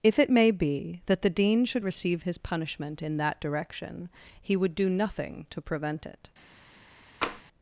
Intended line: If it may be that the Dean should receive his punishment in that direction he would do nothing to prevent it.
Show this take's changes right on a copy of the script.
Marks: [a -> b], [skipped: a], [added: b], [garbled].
If it may be that the Dean should receive his punishment in that direction he would do nothing to prevent it.